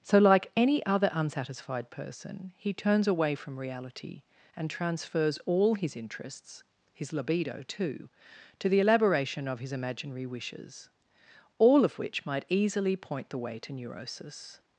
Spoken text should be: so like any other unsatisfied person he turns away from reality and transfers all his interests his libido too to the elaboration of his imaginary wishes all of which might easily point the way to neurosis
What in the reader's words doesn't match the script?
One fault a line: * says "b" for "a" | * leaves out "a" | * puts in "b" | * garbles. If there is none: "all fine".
all fine